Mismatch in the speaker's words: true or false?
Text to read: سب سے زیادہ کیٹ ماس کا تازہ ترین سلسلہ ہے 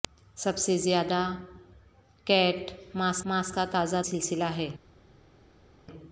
true